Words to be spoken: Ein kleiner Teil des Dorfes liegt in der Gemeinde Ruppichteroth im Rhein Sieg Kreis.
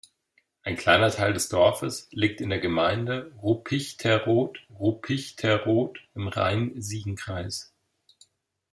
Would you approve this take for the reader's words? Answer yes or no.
no